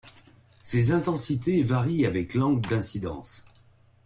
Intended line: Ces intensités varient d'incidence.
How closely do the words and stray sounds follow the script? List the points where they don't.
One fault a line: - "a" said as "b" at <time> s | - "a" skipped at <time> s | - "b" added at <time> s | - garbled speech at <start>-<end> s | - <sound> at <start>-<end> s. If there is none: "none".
- "avec l'angle" added at 2.1 s